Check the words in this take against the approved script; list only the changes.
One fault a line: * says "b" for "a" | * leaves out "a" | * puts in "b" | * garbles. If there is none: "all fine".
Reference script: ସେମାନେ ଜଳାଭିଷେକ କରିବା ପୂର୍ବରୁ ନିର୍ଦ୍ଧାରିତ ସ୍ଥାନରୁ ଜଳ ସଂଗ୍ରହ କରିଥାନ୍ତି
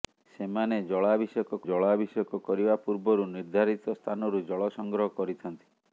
* puts in "ଜଳାଭିଷେକ"